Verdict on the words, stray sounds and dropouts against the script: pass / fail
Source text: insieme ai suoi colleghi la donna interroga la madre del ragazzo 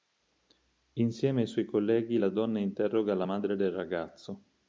pass